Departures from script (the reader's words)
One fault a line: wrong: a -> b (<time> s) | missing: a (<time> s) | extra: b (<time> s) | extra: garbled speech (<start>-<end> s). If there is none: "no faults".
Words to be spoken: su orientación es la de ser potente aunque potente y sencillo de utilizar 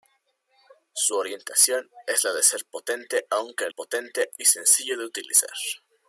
no faults